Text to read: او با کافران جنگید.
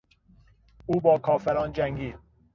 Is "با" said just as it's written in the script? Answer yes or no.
yes